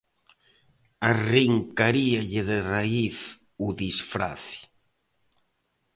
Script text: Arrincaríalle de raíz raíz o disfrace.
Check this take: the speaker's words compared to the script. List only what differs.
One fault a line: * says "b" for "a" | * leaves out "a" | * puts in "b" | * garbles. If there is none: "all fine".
* leaves out "raíz"